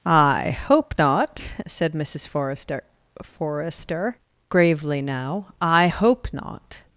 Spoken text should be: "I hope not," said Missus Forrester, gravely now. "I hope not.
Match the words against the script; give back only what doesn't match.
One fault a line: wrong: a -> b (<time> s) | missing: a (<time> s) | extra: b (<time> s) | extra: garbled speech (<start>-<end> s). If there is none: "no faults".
extra: Forrester (3.2 s)